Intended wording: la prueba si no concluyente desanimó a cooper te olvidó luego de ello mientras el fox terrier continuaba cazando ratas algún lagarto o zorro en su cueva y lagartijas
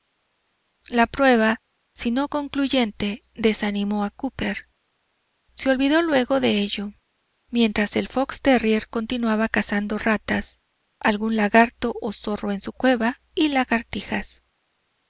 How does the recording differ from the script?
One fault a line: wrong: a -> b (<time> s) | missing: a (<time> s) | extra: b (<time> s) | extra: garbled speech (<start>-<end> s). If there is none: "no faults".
wrong: te -> se (5.5 s)